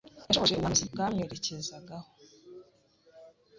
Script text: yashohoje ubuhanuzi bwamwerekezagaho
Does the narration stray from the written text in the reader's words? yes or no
no